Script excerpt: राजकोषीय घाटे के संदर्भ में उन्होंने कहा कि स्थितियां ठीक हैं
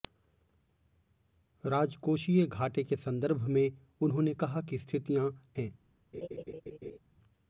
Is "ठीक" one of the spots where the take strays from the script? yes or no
yes